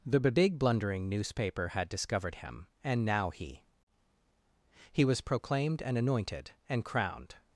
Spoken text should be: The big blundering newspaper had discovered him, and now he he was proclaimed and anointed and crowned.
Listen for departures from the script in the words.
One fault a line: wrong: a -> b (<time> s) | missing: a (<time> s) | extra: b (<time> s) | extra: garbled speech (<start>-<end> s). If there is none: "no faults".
no faults